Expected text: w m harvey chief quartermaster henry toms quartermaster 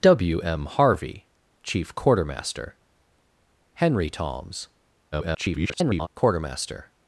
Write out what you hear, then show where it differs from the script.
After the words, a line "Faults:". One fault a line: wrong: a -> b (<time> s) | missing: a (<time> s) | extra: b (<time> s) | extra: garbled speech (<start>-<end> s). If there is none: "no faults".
w m harvey chief quartermaster henry toms [garbled] quartermaster
Faults:
extra: garbled speech (5.1-6.1 s)